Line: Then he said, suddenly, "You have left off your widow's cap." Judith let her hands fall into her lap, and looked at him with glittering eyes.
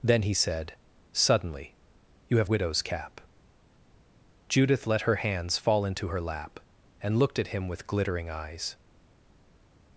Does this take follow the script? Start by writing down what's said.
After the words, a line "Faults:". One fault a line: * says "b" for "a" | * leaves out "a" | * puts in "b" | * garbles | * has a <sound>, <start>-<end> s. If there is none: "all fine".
Then he said, suddenly, "You have widow's cap." Judith let her hands fall into her lap, and looked at him with glittering eyes.
Faults:
* leaves out "left off your"